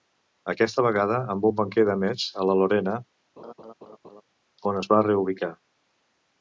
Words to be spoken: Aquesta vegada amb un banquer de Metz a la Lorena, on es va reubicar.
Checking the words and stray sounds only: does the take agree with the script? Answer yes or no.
no